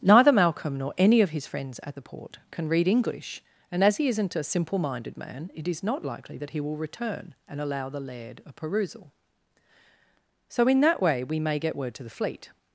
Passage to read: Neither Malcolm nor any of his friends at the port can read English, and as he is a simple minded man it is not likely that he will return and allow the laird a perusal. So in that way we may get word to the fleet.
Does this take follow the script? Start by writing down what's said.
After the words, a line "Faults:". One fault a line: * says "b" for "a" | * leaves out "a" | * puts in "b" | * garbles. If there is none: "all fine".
Neither Malcolm nor any of his friends at the port can read English, and as he isn't a simple minded man it is not likely that he will return and allow the laird a perusal. So in that way we may get word to the fleet.
Faults:
* says "isn't" for "is"